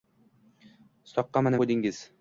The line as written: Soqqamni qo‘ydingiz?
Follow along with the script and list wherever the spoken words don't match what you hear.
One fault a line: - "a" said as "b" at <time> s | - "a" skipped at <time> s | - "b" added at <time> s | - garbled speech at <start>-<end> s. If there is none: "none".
none